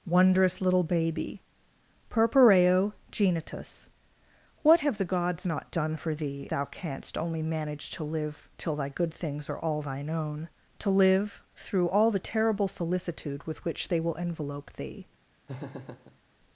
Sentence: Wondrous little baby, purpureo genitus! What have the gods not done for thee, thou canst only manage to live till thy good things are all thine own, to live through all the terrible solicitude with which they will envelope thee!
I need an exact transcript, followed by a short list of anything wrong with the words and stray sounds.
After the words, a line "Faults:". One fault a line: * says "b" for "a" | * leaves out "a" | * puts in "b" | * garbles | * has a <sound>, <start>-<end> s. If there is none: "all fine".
Wondrous little baby, purpureo genitus! What have the gods not done for thee, thou canst only manage to live till thy good things are all thine own, to live through all the terrible solicitude with which they will envelope thee!
Faults:
* has a laugh, 15.5-16.2 s